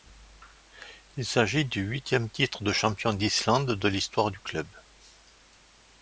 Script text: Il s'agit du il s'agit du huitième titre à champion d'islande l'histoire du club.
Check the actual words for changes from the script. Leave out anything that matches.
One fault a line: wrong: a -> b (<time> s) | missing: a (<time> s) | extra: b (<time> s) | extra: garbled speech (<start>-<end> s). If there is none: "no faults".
missing: il s'agit du (1.8 s)
wrong: à -> de (2.6 s)
extra: de (3.8 s)